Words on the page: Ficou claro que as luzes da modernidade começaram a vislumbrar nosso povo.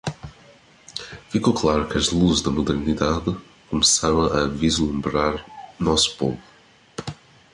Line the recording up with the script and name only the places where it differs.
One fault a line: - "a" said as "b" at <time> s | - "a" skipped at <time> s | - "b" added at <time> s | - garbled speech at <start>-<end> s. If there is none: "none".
none